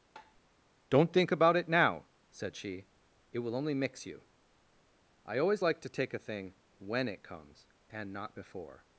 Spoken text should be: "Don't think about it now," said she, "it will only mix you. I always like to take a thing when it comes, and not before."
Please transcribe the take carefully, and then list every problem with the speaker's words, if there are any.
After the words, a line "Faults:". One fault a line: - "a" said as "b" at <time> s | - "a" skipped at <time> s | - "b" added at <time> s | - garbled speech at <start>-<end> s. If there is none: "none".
"Don't think about it now," said she, "it will only mix you. I always like to take a thing when it comes, and not before."
Faults:
none